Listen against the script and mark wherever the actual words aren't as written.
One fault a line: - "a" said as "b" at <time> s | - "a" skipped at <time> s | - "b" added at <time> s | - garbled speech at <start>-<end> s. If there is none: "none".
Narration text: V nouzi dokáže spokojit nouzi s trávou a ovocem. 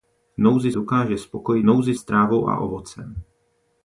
none